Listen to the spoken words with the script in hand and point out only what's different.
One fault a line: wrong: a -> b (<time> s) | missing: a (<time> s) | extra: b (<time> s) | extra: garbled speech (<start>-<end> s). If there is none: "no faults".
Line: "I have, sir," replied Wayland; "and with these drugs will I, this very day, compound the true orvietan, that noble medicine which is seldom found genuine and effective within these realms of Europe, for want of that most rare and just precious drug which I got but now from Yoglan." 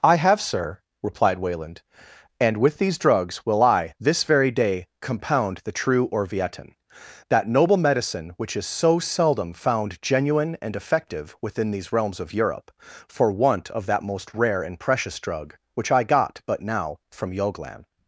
extra: so (8.6 s)
missing: just (14.8 s)